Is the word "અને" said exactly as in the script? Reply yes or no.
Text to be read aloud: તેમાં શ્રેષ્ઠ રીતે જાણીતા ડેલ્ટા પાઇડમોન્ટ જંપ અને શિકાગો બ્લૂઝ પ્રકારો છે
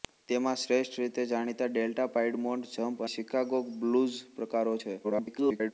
no